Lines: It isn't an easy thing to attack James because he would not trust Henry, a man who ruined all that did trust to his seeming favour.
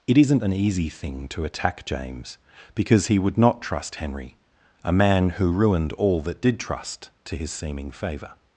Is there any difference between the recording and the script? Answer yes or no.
no